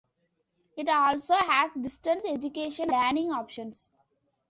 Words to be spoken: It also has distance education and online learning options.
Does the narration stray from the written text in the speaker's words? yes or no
yes